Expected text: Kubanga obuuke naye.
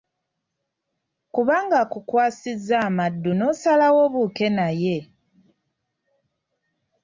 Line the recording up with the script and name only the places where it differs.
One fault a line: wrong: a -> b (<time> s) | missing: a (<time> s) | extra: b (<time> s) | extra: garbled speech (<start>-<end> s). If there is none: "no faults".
extra: akukwasizza amaddu n'osalawo (1.8 s)